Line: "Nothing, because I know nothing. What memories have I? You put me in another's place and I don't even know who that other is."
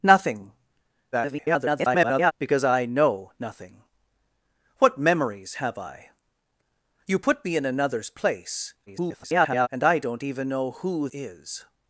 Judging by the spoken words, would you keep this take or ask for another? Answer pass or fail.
fail